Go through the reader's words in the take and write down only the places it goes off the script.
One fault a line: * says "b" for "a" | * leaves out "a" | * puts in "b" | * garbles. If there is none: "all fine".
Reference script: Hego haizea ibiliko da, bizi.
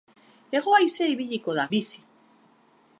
all fine